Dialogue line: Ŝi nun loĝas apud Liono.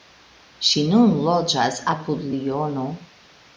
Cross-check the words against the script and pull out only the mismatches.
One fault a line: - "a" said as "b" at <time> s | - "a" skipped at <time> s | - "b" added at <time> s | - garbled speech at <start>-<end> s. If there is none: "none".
none